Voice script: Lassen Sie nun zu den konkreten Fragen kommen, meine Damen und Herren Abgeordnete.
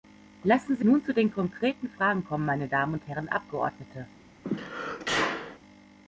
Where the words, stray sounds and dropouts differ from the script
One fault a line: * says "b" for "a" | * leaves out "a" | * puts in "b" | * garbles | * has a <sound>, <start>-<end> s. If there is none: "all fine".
* has a sneeze, 4.4-5.6 s